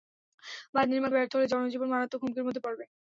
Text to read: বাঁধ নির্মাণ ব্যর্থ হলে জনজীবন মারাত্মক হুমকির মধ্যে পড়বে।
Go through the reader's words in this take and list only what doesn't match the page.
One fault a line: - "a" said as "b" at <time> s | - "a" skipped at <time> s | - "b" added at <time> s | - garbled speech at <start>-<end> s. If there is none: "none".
none